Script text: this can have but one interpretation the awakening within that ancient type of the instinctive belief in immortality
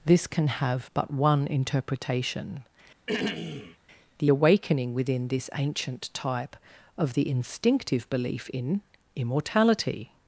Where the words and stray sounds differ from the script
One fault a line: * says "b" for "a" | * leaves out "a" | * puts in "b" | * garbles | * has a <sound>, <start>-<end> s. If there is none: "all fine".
* has a throat clearing, 3.1-3.8 s
* says "this" for "that"